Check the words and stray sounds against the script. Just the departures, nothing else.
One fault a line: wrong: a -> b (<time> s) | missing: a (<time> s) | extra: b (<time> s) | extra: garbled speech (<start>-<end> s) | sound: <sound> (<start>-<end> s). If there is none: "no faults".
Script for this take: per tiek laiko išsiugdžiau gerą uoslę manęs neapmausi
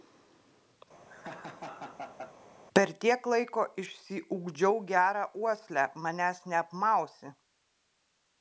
sound: laugh (1.1-2.3 s)